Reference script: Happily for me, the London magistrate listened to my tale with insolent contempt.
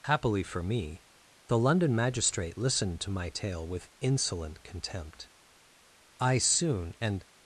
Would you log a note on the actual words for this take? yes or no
yes